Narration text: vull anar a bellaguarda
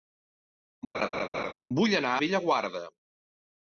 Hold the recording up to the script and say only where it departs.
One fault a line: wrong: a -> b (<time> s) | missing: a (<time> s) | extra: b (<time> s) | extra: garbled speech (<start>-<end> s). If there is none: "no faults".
missing: a (2.1 s)